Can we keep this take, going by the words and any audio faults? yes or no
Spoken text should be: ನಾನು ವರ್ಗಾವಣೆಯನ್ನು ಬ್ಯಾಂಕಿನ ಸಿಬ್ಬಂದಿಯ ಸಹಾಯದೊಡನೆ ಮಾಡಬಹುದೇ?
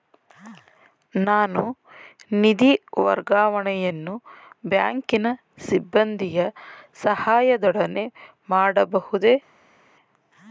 no